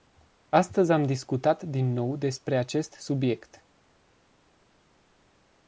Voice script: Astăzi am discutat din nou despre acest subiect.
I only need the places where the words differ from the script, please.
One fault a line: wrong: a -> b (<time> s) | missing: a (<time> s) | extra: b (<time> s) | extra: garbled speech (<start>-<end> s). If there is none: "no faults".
no faults